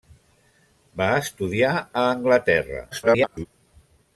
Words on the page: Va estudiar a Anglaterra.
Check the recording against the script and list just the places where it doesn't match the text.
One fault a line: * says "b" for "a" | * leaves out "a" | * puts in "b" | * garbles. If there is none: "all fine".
* garbles